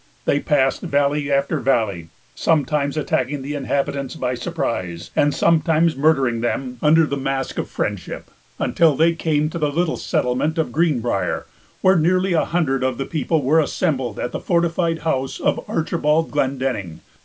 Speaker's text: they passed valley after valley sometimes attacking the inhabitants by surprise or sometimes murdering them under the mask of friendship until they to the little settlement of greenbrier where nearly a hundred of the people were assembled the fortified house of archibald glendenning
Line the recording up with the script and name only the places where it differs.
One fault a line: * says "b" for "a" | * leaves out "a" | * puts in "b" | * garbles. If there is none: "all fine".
* says "and" for "or"
* puts in "came"
* puts in "at"